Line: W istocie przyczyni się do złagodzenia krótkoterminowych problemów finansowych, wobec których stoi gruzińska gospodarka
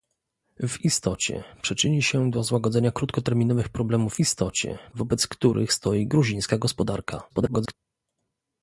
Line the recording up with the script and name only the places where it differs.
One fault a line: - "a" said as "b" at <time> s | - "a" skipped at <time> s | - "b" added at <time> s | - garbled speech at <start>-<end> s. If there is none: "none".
- "finansowych" said as "istocie" at 4.2 s
- garbled speech at 7.3-7.7 s